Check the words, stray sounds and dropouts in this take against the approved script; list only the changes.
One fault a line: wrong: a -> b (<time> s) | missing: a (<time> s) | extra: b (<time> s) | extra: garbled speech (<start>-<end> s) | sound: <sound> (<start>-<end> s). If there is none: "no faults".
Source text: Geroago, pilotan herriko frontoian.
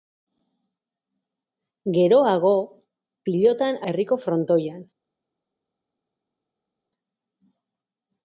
no faults